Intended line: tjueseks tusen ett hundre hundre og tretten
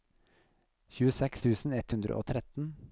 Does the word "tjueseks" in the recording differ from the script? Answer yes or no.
no